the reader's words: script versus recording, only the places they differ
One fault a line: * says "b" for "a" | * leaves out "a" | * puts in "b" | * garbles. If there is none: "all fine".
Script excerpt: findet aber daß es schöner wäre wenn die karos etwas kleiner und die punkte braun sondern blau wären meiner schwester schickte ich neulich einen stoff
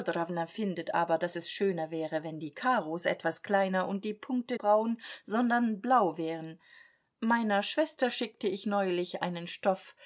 all fine